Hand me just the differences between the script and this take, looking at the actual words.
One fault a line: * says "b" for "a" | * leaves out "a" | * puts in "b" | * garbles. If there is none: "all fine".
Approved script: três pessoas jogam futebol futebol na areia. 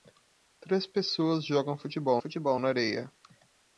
all fine